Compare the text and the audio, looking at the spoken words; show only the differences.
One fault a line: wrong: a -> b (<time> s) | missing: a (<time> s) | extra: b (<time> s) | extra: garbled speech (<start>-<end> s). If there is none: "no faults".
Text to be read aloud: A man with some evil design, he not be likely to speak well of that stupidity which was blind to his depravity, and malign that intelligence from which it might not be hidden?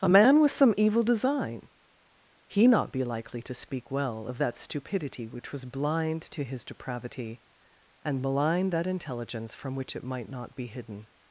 no faults